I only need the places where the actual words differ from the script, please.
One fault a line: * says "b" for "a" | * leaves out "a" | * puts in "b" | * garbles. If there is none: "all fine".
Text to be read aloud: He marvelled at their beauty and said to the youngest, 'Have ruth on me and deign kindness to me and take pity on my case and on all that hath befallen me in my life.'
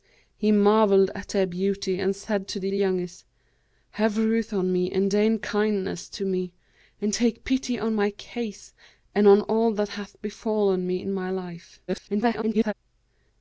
* puts in "the"
* garbles